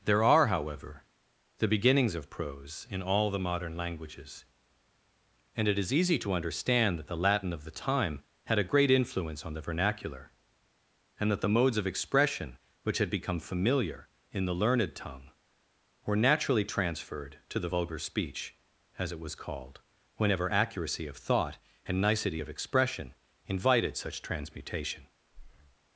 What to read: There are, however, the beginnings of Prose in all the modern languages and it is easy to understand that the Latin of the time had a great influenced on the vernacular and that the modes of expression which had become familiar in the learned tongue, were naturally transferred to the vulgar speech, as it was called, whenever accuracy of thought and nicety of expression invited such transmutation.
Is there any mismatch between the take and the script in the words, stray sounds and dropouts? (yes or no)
yes